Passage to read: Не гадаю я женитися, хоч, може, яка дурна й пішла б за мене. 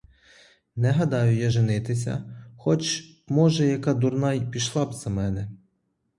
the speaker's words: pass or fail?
pass